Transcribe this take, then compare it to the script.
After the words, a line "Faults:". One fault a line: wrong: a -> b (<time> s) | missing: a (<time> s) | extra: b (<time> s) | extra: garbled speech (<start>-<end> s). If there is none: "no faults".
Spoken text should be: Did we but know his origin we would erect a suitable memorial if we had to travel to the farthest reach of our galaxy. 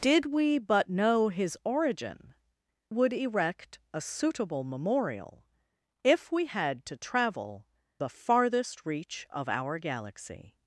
Did we but know his origin would erect a suitable memorial if we had to travel the farthest reach of our galaxy.
Faults:
missing: we (2.3 s)
missing: to (7.7 s)